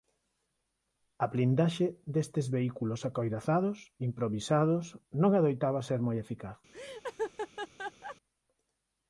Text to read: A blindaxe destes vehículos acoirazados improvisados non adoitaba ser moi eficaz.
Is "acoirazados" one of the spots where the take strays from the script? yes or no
no